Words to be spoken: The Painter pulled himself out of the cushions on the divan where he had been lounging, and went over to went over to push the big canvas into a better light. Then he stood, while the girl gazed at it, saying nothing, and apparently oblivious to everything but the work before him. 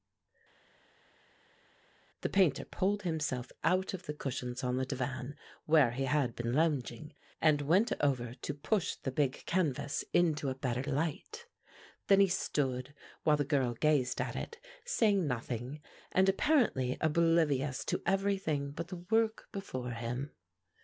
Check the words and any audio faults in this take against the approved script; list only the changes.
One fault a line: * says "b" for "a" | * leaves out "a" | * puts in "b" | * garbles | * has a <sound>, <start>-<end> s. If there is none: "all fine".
* leaves out "went over to"